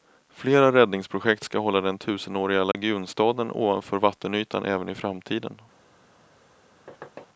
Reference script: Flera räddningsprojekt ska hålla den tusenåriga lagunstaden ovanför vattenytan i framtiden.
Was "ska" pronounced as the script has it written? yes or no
yes